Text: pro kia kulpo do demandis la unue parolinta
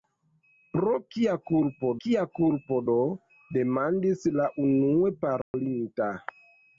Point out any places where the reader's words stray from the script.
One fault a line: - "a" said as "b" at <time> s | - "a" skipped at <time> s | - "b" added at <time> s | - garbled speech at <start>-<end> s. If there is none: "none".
- "kia kulpo" added at 2.0 s